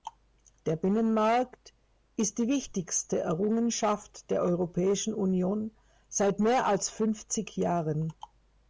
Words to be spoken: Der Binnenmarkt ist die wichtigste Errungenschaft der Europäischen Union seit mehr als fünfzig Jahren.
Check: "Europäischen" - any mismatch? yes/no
no